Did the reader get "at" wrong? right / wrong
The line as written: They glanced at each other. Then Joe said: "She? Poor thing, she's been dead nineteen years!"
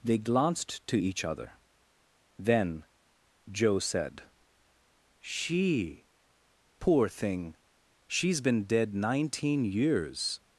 wrong